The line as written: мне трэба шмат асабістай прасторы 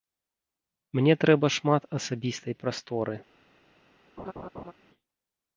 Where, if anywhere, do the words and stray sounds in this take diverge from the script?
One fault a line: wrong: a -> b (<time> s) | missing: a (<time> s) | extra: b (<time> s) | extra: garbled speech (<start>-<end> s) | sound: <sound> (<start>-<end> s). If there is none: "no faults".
sound: laugh (4.2-4.7 s)